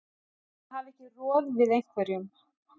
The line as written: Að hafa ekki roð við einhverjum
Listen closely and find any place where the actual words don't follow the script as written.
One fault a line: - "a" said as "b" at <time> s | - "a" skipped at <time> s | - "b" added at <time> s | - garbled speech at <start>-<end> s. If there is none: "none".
none